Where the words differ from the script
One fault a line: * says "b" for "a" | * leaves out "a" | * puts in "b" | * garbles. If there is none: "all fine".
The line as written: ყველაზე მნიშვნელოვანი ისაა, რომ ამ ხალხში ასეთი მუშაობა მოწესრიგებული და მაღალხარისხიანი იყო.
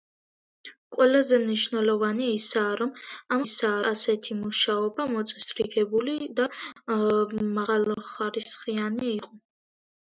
* says "ისაა" for "ხალხში"